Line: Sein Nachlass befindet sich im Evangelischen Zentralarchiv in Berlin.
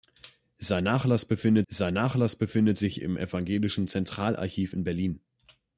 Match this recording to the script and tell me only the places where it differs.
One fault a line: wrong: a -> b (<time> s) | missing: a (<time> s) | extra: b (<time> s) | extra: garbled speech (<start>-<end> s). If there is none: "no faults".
extra: sein Nachlass befindet (1.7 s)